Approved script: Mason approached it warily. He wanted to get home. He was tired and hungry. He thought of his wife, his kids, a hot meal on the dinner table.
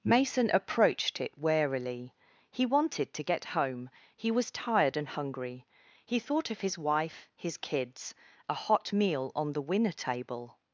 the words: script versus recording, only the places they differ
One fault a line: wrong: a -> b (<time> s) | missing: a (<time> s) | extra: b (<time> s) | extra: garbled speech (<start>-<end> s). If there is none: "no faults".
wrong: dinner -> winner (9.6 s)